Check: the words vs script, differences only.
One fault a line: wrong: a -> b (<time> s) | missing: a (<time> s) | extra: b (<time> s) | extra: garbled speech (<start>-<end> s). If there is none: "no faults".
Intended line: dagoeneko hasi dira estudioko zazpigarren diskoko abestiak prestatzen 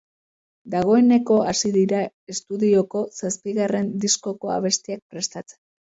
no faults